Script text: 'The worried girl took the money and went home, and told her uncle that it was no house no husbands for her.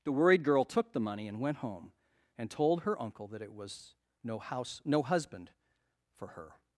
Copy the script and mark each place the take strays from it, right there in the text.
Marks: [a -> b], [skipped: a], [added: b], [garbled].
'The worried girl took the money and went home, and told her uncle that it was no house no [husbands -> husband] for her.